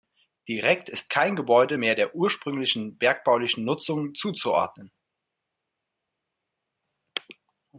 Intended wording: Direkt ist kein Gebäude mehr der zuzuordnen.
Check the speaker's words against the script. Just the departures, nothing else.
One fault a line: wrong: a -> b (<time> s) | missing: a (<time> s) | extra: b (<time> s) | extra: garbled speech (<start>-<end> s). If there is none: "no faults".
extra: ursprünglichen bergbaulichen Nutzung (2.1 s)